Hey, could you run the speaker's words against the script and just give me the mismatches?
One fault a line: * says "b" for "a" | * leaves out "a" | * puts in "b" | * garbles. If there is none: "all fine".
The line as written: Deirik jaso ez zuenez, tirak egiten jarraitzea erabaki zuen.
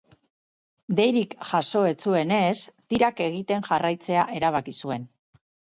all fine